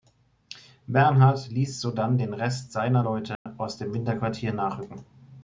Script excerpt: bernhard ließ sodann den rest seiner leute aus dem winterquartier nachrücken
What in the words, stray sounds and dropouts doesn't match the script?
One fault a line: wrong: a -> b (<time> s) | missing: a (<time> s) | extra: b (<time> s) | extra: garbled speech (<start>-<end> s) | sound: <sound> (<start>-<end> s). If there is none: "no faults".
sound: dropout (3.4-3.5 s)